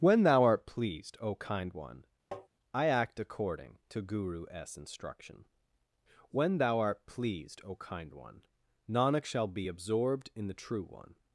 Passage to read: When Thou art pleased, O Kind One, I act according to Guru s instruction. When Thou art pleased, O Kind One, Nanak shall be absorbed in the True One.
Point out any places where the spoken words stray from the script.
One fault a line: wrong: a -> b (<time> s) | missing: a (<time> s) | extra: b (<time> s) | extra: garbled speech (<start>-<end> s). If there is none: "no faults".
no faults